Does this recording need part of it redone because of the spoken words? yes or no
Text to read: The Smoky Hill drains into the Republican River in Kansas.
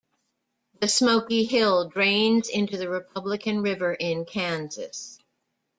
no